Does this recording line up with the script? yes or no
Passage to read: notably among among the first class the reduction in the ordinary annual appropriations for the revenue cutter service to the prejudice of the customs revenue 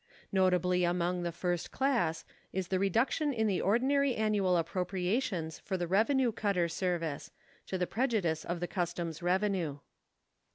no